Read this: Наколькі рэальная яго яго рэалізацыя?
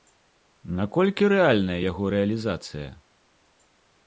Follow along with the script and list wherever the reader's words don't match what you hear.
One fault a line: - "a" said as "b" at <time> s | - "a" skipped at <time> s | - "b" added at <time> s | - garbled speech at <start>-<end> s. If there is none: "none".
- "яго" skipped at 2.0 s